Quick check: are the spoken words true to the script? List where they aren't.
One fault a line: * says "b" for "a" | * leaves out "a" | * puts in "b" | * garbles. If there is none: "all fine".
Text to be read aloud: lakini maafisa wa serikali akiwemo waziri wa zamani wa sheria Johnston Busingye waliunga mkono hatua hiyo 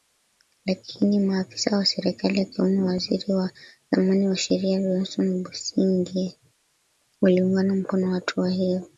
all fine